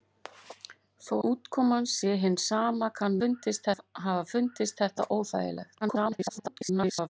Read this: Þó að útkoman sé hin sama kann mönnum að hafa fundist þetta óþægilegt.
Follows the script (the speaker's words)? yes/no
no